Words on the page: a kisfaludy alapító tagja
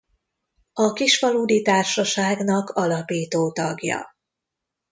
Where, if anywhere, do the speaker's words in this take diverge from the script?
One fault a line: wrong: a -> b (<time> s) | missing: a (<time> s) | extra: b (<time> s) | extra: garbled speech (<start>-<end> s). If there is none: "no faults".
extra: társaságnak (1.6 s)